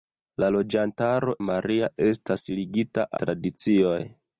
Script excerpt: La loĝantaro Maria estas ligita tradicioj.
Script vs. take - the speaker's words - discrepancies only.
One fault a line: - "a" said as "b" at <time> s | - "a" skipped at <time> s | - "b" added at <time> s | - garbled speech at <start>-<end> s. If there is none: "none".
none